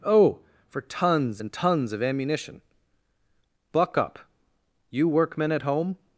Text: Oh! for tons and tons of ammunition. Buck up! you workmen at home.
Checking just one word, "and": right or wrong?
right